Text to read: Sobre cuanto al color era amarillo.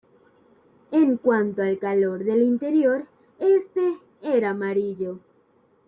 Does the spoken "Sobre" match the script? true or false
false